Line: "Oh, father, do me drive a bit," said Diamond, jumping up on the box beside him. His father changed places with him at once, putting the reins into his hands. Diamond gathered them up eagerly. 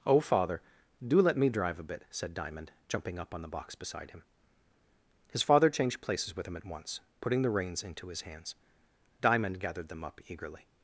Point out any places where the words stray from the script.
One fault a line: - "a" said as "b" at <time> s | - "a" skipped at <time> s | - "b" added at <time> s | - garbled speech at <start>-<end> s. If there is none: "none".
- "let" added at 1.2 s